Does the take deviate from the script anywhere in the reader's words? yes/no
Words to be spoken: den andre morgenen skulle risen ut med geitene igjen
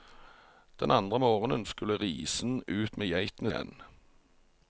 no